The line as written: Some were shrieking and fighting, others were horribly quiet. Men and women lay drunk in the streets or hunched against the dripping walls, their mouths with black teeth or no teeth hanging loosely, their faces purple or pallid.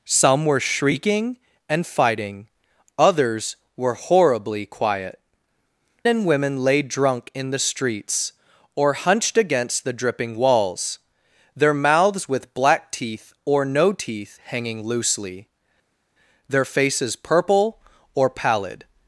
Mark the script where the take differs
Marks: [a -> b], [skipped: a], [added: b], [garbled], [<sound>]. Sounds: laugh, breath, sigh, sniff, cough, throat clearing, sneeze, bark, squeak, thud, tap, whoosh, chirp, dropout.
Some were shrieking and fighting, others were horribly quiet. [skipped: Men] and women lay drunk in the streets or hunched against the dripping walls, their mouths with black teeth or no teeth hanging loosely, their faces purple or pallid.